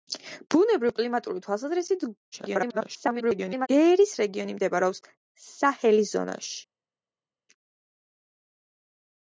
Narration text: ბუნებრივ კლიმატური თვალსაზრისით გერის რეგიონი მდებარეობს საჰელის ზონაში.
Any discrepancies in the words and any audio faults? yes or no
yes